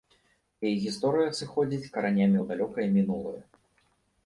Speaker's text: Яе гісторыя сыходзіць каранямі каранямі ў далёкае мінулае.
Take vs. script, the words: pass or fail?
fail